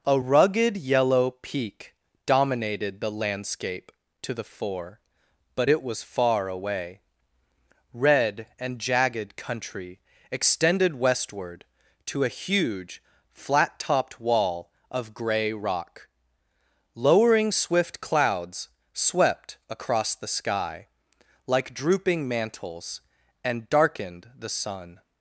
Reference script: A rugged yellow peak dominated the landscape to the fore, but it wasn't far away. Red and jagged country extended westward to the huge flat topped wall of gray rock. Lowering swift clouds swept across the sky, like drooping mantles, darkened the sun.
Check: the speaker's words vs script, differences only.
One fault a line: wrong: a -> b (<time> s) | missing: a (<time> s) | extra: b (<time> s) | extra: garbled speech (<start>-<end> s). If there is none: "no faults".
wrong: wasn't -> was (5.8 s)
wrong: the -> a (12.2 s)
extra: and (23.4 s)